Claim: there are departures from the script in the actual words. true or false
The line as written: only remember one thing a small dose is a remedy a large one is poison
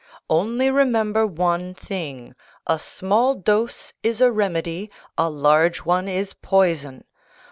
false